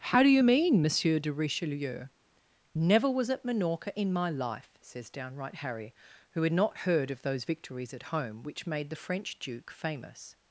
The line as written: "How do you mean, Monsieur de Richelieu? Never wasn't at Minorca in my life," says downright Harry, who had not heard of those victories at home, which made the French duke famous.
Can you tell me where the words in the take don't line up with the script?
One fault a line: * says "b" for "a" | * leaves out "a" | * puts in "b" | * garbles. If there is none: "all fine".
* says "was" for "wasn't"